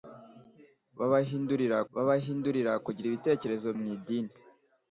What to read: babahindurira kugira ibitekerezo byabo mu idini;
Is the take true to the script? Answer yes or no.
no